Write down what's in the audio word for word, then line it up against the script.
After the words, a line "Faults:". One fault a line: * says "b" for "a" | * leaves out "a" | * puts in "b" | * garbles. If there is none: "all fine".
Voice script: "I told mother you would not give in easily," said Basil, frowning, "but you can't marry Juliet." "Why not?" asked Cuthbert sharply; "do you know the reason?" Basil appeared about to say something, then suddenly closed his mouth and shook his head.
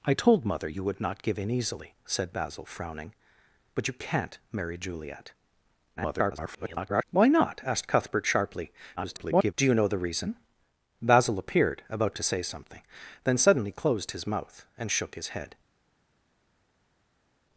"I told mother you would not give in easily," said Basil, frowning, "but you can't marry Juliet." [garbled] "Why not?" asked Cuthbert sharply; [garbled] "do you know the reason?" Basil appeared about to say something, then suddenly closed his mouth and shook his head.
Faults:
* garbles
* garbles